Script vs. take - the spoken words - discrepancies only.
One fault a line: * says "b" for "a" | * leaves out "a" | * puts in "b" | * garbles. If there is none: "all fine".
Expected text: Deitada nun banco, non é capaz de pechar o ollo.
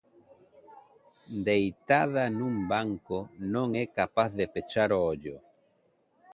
all fine